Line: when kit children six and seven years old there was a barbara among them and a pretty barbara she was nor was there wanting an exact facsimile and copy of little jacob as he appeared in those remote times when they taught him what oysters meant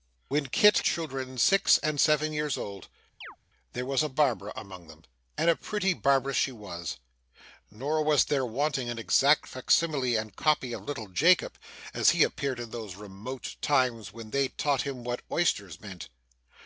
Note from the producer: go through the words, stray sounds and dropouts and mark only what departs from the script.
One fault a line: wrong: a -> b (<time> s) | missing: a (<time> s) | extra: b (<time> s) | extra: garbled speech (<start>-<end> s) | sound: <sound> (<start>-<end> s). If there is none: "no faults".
sound: chirp (3.2-3.4 s)